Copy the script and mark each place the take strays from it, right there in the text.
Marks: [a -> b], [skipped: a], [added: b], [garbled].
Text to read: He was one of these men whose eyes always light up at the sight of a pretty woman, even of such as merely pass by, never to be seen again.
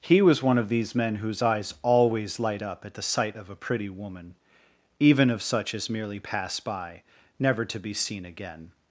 He was one of these men whose eyes always light up at the sight of a pretty woman, even of such as merely pass by, never to be seen again.